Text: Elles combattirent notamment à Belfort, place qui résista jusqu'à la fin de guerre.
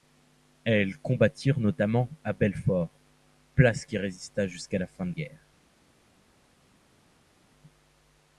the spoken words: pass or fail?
pass